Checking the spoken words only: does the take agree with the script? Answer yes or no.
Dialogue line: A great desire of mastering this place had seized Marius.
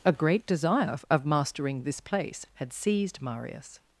yes